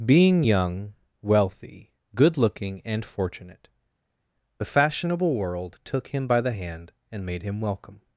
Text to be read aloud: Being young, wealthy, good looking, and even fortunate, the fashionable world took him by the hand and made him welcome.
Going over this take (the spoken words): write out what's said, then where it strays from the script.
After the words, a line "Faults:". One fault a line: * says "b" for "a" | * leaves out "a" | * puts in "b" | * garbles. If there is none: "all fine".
Being young, wealthy, good looking, and fortunate, the fashionable world took him by the hand and made him welcome.
Faults:
* leaves out "even"